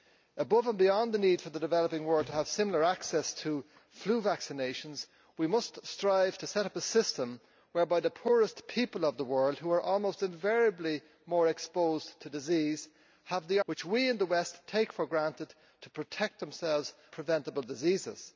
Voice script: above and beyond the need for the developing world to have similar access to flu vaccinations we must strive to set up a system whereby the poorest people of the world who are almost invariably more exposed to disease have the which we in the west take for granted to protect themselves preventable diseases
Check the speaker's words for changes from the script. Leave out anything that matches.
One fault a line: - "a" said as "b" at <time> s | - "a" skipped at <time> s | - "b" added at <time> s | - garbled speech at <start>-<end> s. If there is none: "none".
none